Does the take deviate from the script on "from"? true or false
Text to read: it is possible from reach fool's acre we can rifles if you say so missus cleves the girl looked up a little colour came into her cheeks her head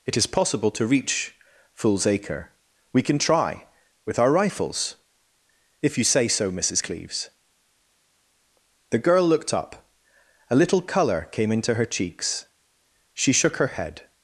true